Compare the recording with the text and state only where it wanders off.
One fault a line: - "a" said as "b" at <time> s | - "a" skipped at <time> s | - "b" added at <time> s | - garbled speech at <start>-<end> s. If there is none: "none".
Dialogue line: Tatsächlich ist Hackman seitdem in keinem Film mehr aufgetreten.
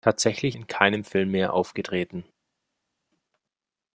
- "ist Hackman seitdem" skipped at 0.6 s